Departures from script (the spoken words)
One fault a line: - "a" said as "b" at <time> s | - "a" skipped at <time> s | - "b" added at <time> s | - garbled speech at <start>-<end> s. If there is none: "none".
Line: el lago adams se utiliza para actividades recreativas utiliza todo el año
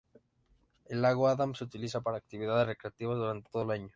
- "utiliza" said as "durante" at 3.2 s